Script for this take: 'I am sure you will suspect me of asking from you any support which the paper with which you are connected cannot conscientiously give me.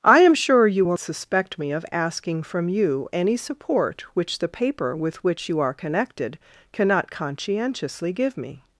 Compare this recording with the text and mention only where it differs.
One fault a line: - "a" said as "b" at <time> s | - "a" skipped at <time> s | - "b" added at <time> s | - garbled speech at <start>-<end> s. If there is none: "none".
none